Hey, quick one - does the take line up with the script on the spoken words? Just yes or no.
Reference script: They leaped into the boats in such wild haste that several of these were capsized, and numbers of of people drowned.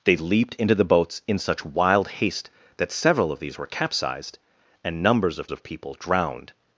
yes